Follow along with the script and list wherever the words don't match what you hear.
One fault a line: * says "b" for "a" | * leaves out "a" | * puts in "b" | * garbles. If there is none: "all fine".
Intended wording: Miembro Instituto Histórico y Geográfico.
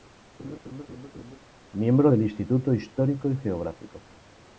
* puts in "del"